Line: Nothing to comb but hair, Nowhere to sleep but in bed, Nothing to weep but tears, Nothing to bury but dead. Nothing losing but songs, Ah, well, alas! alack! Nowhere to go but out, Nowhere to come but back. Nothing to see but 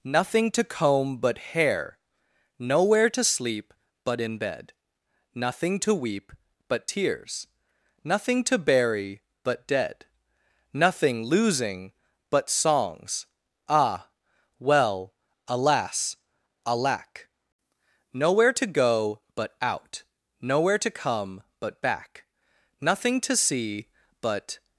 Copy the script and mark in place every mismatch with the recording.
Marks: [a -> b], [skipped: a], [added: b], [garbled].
Nothing to comb but hair, Nowhere to sleep but in bed, Nothing to weep but tears, Nothing to bury but dead. Nothing losing but songs, Ah, well, alas! alack! Nowhere to go but out, Nowhere to come but back. Nothing to see but